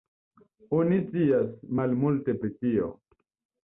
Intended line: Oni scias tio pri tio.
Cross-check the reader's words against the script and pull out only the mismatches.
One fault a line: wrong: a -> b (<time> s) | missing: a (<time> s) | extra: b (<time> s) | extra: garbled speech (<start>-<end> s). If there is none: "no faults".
wrong: tio -> malmulte (1.8 s)